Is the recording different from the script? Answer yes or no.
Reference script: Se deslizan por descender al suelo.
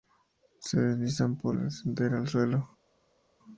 no